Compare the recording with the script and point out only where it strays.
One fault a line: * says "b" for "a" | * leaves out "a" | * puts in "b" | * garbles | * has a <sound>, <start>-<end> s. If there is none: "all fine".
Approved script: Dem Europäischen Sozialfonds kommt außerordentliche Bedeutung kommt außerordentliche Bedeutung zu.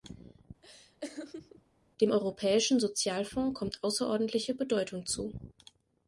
* has a laugh, 0.6-1.6 s
* leaves out "kommt außerordentliche Bedeutung"